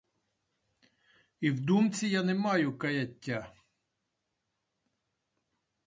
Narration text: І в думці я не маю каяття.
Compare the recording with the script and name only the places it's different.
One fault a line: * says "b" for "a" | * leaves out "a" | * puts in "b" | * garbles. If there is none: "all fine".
all fine